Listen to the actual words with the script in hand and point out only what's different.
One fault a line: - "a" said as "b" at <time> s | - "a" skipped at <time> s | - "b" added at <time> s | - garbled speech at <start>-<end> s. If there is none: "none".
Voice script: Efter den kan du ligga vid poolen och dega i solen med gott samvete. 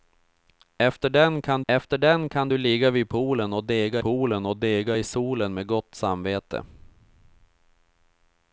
- "efter den kan" added at 1.7 s
- "poolen och dega" added at 4.0 s